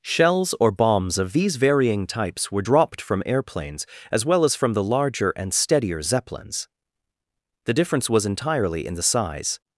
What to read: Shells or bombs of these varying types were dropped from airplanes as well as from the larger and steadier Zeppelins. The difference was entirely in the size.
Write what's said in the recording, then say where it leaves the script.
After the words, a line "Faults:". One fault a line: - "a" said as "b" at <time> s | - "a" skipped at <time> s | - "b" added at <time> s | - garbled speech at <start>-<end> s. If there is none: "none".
Shells or bombs of these varying types were dropped from airplanes as well as from the larger and steadier Zeppelins. The difference was entirely in the size.
Faults:
none